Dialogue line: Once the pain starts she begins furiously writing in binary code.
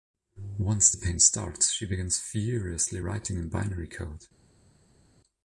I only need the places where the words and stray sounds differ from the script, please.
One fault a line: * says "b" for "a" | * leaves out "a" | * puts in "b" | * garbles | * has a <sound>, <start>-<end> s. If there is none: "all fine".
all fine